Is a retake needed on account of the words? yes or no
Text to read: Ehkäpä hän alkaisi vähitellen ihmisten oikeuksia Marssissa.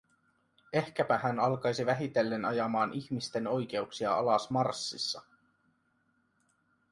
yes